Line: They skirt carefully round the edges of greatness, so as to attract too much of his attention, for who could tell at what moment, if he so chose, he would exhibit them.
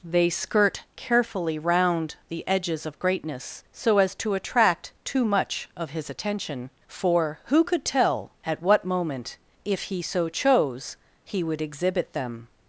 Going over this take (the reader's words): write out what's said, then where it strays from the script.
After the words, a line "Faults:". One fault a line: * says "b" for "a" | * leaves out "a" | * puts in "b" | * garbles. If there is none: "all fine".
They skirt carefully round the edges of greatness, so as to attract too much of his attention, for who could tell at what moment, if he so chose, he would exhibit them.
Faults:
all fine